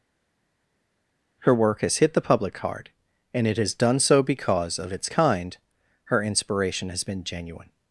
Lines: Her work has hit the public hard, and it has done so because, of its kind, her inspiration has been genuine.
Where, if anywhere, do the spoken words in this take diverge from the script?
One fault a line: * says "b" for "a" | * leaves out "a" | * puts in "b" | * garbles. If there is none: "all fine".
all fine